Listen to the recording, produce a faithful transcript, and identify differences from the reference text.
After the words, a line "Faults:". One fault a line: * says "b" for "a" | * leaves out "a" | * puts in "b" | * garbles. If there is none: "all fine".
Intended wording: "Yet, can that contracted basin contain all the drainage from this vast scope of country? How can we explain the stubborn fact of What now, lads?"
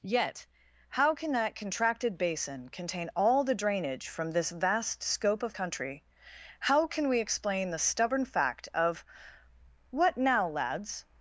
"Yet, how can that contracted basin contain all the drainage from this vast scope of country? How can we explain the stubborn fact of What now, lads?"
Faults:
* puts in "how"